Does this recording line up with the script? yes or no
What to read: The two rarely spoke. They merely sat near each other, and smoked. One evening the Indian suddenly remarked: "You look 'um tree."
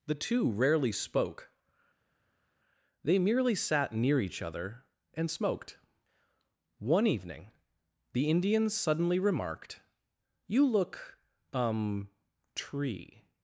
yes